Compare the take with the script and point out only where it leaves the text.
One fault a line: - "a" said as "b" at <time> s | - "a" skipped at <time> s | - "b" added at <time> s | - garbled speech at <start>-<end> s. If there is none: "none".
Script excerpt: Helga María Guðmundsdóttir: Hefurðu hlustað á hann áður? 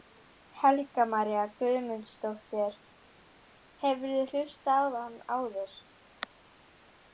none